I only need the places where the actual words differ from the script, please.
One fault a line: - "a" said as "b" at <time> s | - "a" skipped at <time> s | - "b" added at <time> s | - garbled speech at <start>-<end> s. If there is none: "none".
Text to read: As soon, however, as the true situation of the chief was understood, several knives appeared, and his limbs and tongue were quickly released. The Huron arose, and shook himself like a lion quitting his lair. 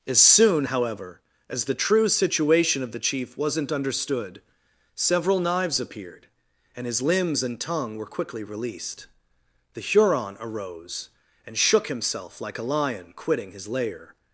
- "was" said as "wasn't" at 3.4 s